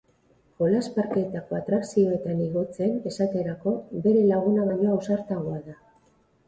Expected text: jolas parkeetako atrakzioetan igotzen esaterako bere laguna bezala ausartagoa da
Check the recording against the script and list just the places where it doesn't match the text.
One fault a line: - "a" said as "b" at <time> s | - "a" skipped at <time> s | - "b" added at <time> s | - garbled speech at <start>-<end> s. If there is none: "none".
- "bezala" said as "baino" at 4.7 s